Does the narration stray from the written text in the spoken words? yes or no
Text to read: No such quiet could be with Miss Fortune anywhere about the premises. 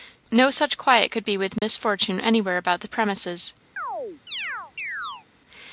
no